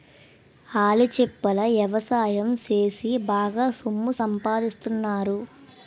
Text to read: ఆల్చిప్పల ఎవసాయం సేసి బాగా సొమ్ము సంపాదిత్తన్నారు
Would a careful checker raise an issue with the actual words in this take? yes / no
no